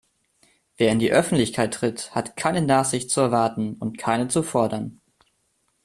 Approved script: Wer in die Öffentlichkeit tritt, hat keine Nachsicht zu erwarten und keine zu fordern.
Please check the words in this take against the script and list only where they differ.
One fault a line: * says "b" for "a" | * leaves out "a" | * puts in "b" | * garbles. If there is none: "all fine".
all fine